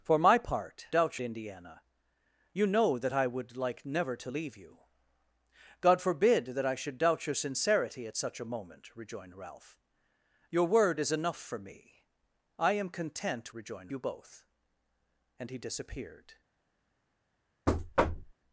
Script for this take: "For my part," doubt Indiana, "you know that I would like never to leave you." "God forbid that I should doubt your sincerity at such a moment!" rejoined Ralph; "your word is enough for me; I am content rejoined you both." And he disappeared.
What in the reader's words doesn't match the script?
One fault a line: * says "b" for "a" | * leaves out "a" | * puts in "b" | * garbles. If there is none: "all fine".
all fine